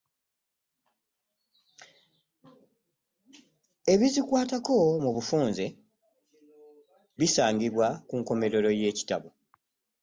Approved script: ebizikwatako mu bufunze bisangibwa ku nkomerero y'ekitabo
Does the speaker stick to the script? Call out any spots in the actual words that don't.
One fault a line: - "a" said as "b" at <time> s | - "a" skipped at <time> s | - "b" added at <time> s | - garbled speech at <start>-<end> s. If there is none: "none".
none